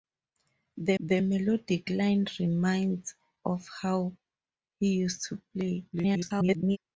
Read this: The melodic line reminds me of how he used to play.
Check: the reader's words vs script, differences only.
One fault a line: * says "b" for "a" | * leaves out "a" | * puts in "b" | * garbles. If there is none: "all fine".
* puts in "the"
* leaves out "me"
* garbles